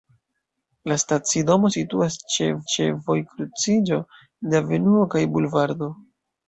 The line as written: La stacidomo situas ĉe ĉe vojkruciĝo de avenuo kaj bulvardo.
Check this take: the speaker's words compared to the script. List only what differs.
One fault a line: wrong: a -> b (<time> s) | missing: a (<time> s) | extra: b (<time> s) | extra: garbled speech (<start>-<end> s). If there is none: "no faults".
no faults